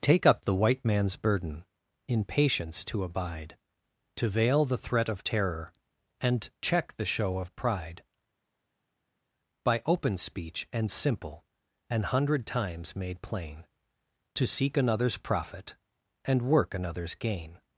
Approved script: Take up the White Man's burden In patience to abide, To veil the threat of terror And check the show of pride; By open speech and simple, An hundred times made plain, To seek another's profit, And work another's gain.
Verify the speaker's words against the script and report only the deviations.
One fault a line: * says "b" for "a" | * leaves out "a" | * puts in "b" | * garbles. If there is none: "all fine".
all fine